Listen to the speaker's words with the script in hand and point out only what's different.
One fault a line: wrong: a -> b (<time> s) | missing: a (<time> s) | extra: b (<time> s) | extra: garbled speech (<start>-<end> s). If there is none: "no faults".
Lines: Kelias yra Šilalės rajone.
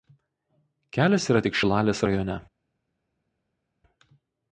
extra: tik (1.5 s)